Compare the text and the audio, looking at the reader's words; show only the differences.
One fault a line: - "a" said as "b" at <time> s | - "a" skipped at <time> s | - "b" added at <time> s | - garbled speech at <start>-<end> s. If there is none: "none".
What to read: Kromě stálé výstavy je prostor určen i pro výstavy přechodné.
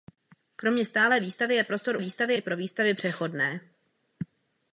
- "určen" said as "výstavy" at 2.0 s